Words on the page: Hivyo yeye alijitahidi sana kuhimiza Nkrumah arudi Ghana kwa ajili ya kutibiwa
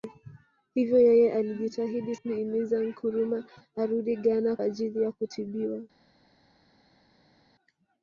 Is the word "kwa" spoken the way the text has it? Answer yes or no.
no